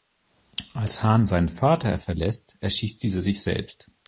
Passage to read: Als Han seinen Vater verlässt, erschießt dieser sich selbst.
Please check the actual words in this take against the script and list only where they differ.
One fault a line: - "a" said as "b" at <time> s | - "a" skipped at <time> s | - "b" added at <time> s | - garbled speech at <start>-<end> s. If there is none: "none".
none